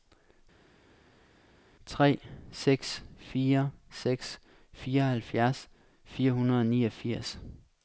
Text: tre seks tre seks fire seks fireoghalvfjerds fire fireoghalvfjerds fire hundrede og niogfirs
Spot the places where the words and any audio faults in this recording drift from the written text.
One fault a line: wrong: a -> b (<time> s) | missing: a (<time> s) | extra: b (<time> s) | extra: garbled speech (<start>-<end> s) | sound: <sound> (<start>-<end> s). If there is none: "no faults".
missing: tre seks (3.0 s)
missing: fireoghalvfjerds fire (6.3 s)